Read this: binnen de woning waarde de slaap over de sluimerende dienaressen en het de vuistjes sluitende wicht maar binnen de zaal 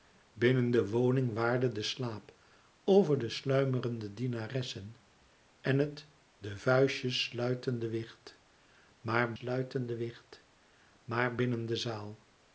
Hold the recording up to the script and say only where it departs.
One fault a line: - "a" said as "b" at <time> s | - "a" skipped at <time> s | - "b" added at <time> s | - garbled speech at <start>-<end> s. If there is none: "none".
- "sluitende wicht maar" added at 9.3 s